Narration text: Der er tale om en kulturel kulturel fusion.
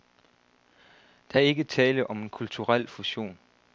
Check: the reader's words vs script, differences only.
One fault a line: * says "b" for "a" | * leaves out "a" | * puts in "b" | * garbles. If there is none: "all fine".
* puts in "ikke"
* leaves out "kulturel"